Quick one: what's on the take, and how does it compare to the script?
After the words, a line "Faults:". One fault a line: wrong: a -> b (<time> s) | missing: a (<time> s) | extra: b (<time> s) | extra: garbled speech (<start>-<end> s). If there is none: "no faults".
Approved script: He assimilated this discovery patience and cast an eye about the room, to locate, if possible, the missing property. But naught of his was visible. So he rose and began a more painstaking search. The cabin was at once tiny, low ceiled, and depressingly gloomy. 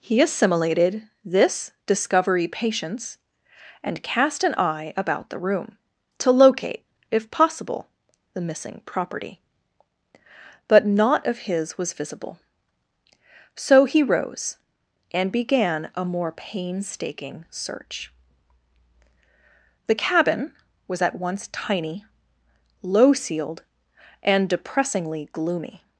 He assimilated this discovery patience and cast an eye about the room, to locate, if possible, the missing property. But naught of his was visible. So he rose and began a more painstaking search. The cabin was at once tiny, low ceiled, and depressingly gloomy.
Faults:
no faults